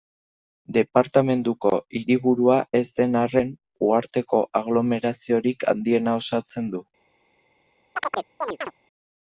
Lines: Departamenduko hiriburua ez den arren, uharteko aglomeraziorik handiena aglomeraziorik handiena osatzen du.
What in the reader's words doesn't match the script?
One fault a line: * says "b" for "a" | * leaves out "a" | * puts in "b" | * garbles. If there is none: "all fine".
* leaves out "aglomeraziorik handiena"